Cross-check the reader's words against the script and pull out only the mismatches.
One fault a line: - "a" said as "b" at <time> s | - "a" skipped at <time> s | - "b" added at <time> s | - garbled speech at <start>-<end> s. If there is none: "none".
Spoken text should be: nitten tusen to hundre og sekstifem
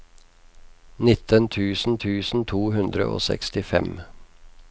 - "tusen" added at 2.0 s